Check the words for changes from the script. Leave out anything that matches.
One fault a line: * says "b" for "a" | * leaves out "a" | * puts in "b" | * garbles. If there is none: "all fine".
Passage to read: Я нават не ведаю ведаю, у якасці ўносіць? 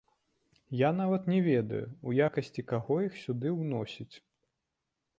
* leaves out "ведаю"
* puts in "каго іх сюды"